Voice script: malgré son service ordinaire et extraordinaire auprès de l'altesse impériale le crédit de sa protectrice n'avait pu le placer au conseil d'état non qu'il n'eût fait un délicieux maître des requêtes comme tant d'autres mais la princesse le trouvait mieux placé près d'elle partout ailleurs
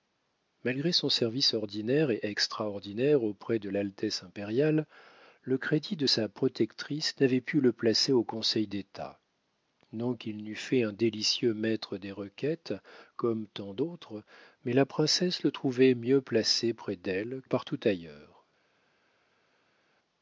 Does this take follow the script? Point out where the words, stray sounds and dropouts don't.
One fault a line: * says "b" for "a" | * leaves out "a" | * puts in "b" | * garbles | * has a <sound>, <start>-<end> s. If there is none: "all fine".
all fine